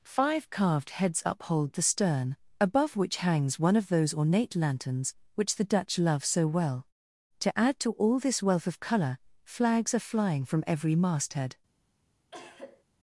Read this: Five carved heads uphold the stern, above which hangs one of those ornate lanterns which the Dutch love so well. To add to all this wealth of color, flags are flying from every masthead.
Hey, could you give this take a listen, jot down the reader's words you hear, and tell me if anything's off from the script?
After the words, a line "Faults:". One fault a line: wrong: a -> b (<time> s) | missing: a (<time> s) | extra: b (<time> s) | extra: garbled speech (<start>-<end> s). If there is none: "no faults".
Five carved heads uphold the stern, above which hangs one of those ornate lanterns which the Dutch love so well. To add to all this wealth of color, flags are flying from every masthead.
Faults:
no faults